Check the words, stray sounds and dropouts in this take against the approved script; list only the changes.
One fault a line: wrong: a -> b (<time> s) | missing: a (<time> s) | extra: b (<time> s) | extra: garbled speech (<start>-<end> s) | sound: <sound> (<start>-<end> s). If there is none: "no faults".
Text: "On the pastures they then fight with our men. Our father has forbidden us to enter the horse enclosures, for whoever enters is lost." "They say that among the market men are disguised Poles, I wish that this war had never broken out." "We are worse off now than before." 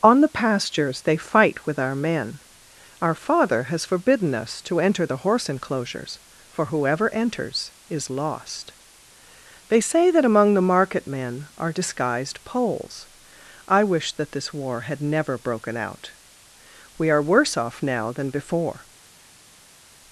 missing: then (1.2 s)